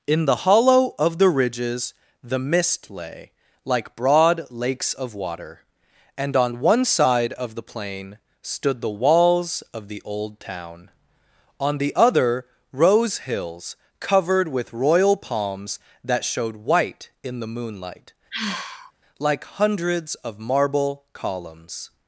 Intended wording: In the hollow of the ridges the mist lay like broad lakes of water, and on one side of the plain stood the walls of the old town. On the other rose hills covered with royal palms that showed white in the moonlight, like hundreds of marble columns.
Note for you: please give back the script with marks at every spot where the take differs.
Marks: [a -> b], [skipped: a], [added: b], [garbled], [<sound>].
In the hollow of the ridges the mist lay like broad lakes of water, and on one side of the plain stood the walls of the old town. On the other rose hills covered with royal palms that showed white in the moonlight, [sigh] like hundreds of marble columns.